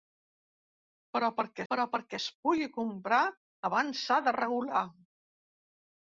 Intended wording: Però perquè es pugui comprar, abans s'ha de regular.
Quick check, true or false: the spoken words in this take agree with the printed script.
false